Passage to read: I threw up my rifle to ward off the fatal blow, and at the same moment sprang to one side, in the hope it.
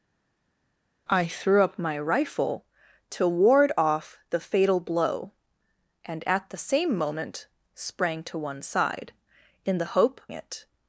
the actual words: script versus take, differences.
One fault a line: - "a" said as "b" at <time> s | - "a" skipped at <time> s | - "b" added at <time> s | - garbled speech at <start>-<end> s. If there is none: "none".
none